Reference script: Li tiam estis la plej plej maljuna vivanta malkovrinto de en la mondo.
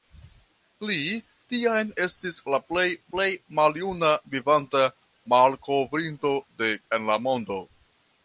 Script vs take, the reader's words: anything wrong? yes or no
no